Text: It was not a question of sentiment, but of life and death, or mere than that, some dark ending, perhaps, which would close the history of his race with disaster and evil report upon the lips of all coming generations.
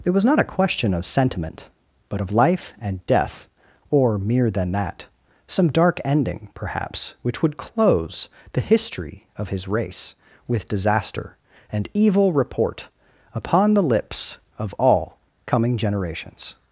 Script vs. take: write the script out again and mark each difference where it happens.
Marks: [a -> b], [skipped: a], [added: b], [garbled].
It was not a question of sentiment, but of life and death, or mere than that, some dark ending, perhaps, which would close the history of his race with disaster and evil report upon the lips of all coming generations.